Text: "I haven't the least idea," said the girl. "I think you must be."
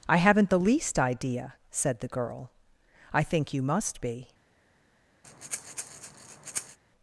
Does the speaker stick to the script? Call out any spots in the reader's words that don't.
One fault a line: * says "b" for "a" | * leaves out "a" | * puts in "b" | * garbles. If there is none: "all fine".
all fine